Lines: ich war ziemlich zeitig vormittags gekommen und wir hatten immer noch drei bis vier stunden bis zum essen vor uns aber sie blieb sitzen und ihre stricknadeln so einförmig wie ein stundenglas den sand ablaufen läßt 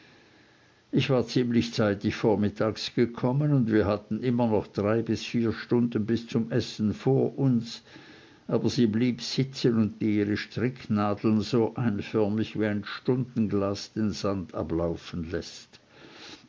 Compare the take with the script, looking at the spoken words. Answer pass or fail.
pass